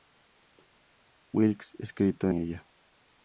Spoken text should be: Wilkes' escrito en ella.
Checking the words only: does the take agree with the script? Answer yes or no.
no